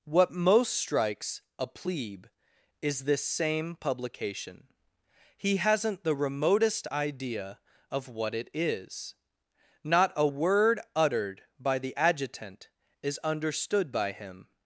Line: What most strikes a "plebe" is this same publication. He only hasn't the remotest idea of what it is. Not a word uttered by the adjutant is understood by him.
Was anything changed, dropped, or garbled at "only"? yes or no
yes